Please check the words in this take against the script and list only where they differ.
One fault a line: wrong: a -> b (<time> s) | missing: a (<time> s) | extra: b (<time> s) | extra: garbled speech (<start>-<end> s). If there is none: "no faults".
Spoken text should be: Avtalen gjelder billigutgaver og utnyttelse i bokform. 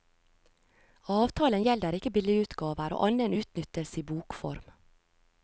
extra: ikke (2.0 s)
extra: annen (3.1 s)